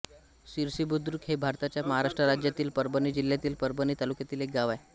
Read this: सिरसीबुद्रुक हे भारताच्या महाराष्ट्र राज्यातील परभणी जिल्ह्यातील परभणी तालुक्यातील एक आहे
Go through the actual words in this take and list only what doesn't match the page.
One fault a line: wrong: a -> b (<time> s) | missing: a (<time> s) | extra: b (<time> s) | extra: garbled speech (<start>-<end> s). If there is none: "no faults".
extra: गाव (4.5 s)